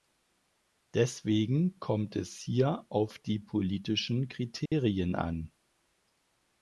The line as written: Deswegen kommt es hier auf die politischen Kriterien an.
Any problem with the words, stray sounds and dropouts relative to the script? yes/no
yes